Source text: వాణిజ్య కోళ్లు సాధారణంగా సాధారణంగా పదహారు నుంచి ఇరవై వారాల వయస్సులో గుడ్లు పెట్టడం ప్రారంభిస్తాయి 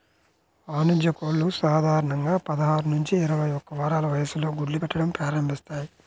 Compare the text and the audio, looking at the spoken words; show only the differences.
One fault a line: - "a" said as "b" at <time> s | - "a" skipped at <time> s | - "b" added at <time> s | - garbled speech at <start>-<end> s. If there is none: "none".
- "సాధారణంగా" skipped at 2.3 s
- "ఒక్క" added at 3.5 s